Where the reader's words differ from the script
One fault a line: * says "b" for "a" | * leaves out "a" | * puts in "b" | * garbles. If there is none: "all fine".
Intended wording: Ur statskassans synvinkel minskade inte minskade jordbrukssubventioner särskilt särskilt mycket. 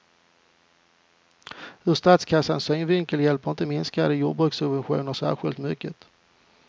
* says "hjälper" for "minskade"
* leaves out "särskilt"